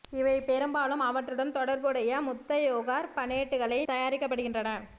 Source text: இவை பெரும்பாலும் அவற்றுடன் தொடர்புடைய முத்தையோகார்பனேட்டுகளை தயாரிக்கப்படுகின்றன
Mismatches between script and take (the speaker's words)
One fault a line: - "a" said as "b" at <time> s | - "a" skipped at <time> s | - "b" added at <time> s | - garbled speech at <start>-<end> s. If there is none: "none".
none